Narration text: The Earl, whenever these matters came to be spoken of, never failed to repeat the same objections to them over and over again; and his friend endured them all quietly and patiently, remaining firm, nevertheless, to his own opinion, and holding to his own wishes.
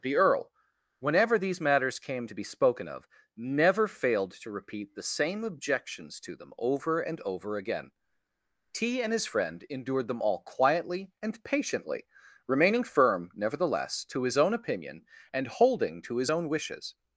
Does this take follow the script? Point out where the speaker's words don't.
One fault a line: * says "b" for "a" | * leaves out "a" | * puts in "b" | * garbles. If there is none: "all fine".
* puts in "t"